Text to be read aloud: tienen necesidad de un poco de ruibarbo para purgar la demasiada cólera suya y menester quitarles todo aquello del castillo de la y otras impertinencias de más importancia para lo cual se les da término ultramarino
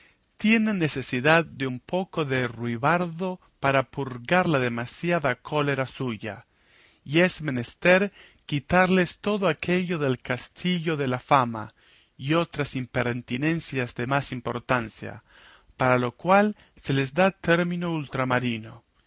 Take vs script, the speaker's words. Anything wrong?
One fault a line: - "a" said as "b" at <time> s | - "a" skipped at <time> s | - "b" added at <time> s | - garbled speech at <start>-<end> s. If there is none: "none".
- "es" added at 7.2 s
- "fama" added at 11.2 s